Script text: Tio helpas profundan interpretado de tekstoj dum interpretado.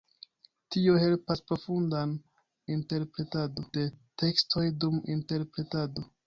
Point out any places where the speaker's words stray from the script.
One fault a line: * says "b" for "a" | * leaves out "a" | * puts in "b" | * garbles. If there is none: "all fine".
all fine